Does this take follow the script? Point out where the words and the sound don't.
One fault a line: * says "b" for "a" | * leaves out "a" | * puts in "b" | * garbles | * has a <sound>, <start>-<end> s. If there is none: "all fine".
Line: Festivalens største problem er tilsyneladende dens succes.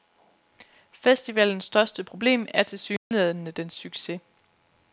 * has a dropout, 3.0-3.1 s